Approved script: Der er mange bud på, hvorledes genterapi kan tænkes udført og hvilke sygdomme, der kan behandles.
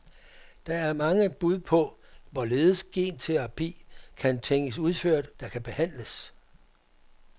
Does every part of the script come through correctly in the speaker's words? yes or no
no